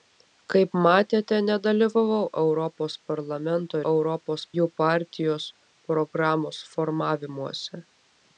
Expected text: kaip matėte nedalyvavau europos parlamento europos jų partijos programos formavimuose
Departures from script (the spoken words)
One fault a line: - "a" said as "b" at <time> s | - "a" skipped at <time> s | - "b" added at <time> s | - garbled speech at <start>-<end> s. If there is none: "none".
none